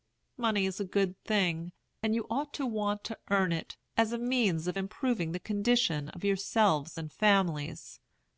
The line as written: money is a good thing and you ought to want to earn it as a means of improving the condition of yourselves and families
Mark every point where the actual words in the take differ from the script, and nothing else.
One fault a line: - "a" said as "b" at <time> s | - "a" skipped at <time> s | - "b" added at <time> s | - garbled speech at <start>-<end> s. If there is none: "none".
none